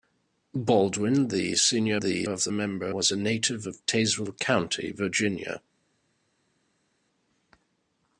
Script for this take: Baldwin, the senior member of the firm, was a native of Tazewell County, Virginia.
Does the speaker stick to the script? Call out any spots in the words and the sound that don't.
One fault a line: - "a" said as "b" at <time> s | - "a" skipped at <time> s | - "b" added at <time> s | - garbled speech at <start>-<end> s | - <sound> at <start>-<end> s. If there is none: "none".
- "member" said as "the" at 2.0 s
- "firm" said as "member" at 2.5 s